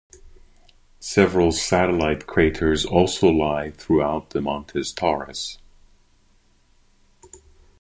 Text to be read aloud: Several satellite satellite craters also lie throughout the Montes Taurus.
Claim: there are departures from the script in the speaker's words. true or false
true